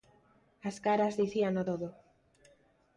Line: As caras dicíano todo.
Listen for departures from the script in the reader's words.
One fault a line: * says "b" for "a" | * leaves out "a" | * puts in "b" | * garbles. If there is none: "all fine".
all fine